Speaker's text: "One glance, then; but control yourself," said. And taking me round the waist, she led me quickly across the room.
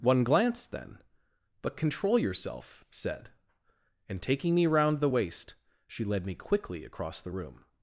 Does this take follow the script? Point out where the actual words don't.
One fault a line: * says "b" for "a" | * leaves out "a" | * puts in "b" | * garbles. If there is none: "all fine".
all fine